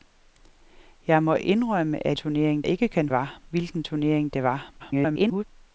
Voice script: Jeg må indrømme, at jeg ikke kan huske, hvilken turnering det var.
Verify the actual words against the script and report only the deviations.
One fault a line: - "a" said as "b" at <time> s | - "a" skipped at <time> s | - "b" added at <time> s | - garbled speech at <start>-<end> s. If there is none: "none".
- "jeg" said as "turnering" at 2.1 s
- "huske" said as "var" at 3.1 s
- garbled speech at 4.8-5.4 s